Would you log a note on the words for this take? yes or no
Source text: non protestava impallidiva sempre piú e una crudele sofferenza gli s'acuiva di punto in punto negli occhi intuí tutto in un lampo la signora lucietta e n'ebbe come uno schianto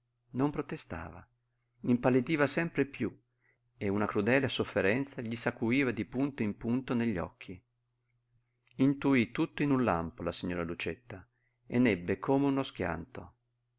no